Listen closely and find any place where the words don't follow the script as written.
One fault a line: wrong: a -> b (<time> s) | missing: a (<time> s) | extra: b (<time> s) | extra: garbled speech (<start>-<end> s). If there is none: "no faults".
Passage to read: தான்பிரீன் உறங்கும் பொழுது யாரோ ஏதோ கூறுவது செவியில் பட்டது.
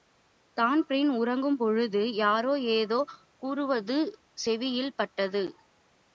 no faults